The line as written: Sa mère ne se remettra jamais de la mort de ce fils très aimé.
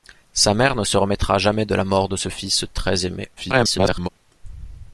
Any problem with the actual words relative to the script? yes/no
yes